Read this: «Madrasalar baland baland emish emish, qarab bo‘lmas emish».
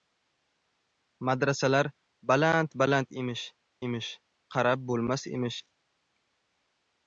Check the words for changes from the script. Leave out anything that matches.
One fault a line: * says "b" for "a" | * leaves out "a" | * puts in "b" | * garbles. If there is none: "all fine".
all fine